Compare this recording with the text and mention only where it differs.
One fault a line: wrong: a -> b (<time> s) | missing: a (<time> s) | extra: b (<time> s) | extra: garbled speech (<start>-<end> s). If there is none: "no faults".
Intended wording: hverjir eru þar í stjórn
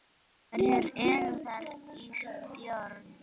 no faults